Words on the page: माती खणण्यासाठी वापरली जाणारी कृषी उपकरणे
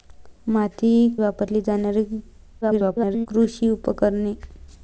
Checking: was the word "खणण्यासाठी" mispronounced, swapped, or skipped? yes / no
yes